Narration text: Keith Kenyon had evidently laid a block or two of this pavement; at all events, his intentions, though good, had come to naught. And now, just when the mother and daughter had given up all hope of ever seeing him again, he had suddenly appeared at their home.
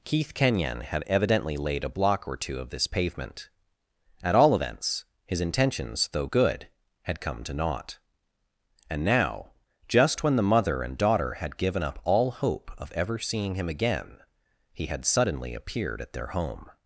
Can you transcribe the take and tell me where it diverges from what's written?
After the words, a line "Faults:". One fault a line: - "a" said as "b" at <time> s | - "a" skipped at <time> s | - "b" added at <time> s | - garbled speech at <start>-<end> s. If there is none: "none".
Keith Kenyon had evidently laid a block or two of this pavement; at all events, his intentions, though good, had come to naught. And now, just when the mother and daughter had given up all hope of ever seeing him again, he had suddenly appeared at their home.
Faults:
none